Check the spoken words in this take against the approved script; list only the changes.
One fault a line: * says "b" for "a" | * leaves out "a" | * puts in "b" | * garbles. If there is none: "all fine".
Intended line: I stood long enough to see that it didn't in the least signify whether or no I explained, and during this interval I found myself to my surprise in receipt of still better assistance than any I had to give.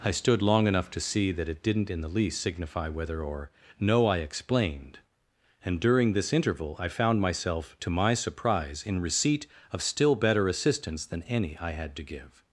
all fine